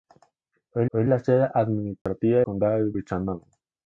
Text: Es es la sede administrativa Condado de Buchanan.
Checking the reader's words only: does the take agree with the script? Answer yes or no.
yes